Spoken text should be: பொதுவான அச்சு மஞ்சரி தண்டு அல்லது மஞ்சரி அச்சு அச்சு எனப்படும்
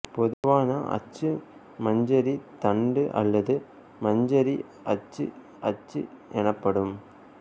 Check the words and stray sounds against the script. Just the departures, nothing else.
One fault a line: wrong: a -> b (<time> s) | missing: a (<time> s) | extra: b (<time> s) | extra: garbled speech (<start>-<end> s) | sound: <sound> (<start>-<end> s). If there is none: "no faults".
sound: dropout (0.3-0.4 s)